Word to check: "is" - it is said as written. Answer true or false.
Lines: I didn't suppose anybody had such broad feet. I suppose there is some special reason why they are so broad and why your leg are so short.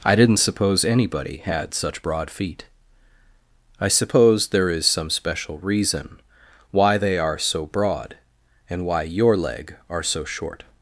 true